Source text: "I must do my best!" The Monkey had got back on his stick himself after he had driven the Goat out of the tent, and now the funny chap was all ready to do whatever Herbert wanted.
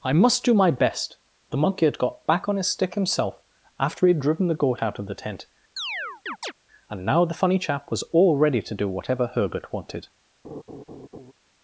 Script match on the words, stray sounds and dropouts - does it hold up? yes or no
no